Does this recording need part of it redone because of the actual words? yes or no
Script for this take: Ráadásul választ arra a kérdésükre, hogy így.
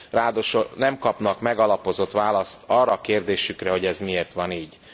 yes